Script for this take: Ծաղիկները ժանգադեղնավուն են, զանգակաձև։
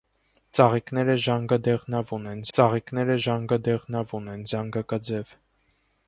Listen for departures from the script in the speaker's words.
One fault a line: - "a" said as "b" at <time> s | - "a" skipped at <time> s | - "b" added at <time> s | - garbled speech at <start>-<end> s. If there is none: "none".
- "ծաղիկները ժանգադեղնավուն են" added at 2.6 s